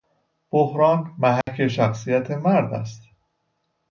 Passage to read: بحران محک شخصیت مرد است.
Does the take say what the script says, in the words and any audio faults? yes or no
no